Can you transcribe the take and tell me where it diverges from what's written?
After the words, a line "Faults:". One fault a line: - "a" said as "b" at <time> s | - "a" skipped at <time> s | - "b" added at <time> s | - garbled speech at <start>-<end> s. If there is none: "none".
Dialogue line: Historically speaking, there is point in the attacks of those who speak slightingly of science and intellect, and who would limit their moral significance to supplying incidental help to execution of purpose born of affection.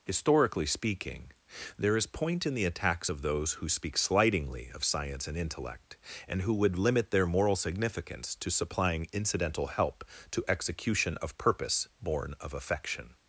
Historically speaking, there is point in the attacks of those who speak slightingly of science and intellect, and who would limit their moral significance to supplying incidental help to execution of purpose born of affection.
Faults:
none